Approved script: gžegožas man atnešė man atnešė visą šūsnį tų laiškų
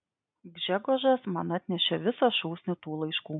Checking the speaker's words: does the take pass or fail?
fail